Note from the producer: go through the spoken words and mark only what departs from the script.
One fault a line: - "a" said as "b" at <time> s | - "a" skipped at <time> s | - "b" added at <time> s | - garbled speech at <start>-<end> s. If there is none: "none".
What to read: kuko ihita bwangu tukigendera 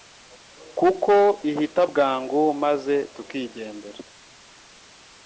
- "maze" added at 2.6 s